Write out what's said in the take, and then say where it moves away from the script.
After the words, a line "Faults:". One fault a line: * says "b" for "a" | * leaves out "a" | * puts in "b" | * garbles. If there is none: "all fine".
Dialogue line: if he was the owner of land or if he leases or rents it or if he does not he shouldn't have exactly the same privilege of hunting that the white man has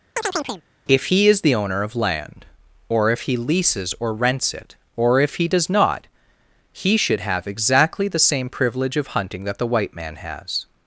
if he is the owner of land or if he leases or rents it or if he does not he should have exactly the same privilege of hunting that the white man has
Faults:
* says "is" for "was"
* says "should" for "shouldn't"